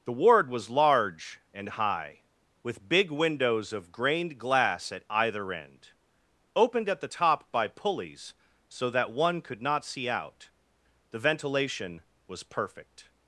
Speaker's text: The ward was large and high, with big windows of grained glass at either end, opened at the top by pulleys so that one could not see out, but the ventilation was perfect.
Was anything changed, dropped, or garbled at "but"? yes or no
yes